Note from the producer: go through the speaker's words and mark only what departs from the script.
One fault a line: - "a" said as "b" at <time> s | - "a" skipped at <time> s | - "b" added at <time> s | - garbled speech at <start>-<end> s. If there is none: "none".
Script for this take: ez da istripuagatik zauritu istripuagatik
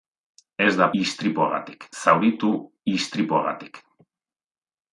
none